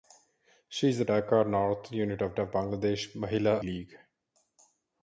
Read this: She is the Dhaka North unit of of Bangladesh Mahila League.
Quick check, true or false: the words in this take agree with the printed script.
true